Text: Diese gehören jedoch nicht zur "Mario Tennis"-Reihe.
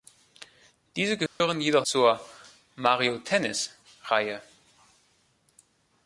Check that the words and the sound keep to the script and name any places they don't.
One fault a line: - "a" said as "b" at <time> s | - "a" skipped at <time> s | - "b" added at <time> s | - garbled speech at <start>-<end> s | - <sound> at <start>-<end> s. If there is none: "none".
- dropout at 1.3-1.4 s
- "nicht" skipped at 1.9 s